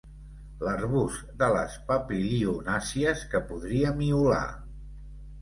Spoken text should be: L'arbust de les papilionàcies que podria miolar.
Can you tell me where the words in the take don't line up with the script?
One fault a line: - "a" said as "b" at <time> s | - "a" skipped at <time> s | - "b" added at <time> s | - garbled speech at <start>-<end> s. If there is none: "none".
none